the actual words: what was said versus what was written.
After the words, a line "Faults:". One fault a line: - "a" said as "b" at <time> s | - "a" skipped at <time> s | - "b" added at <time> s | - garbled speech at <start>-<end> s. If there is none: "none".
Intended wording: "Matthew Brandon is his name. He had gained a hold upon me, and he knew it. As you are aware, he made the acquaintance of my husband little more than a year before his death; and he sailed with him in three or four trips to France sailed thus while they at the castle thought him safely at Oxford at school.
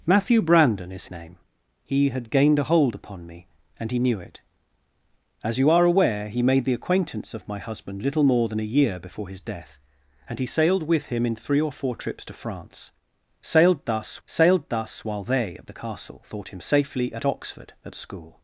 "Matthew Brandon is name. He had gained a hold upon me, and he knew it. As you are aware, he made the acquaintance of my husband little more than a year before his death; and he sailed with him in three or four trips to France sailed thus sailed thus while they at the castle thought him safely at Oxford at school.
Faults:
- "his" skipped at 1.1 s
- "sailed thus" added at 14.2 s